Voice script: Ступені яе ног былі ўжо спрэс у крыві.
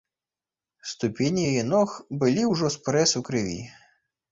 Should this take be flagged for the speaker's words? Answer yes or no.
no